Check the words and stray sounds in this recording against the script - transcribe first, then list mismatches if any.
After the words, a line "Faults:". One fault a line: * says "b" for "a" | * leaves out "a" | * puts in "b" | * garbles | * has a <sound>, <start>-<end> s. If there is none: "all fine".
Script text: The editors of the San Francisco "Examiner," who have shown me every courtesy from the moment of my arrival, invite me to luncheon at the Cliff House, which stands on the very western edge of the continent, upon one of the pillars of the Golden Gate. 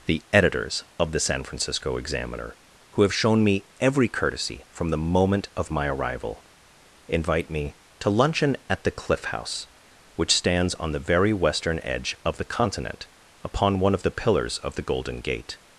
The editors of the San Francisco "Examiner," who have shown me every courtesy from the moment of my arrival, invite me to luncheon at the Cliff House, which stands on the very western edge of the continent, upon one of the pillars of the Golden Gate.
Faults:
all fine